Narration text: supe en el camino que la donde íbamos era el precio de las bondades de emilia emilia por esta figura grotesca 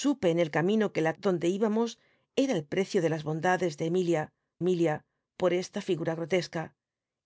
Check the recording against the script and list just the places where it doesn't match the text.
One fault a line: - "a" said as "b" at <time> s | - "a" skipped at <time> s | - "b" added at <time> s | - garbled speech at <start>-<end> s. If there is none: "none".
none